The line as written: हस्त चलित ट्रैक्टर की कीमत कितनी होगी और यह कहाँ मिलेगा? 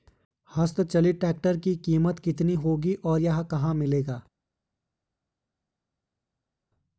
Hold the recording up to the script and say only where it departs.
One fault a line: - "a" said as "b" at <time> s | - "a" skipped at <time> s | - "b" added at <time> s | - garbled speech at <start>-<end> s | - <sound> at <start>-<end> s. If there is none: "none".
none